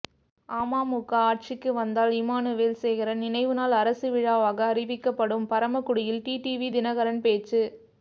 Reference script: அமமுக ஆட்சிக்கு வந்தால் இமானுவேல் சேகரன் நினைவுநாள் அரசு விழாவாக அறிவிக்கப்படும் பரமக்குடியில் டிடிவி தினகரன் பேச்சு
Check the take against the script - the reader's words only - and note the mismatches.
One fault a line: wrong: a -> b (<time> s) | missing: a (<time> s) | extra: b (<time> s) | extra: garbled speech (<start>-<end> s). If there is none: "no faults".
no faults